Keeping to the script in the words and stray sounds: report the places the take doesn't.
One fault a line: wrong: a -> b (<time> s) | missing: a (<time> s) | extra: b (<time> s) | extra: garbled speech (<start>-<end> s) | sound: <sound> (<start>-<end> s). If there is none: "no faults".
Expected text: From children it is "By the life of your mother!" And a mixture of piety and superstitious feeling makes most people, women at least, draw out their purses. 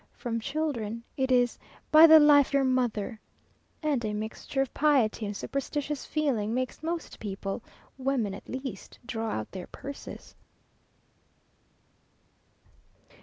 missing: of (2.5 s)